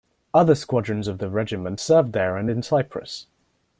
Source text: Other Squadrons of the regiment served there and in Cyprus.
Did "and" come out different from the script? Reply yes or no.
no